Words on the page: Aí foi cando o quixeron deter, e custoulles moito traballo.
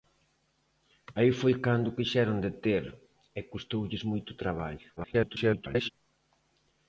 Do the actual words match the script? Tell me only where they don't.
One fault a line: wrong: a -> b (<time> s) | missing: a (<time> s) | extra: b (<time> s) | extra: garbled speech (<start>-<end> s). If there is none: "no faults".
extra: garbled speech (5.0-5.9 s)